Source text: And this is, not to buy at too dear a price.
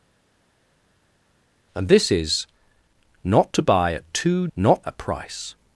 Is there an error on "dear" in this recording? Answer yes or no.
yes